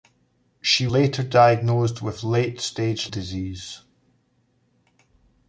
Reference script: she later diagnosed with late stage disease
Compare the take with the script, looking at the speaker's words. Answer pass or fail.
pass